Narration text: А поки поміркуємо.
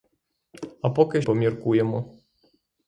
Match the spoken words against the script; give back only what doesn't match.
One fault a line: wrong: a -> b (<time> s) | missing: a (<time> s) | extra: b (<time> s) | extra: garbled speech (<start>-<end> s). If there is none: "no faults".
no faults